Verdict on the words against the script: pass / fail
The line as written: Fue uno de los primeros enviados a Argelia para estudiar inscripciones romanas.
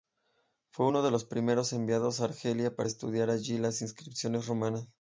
fail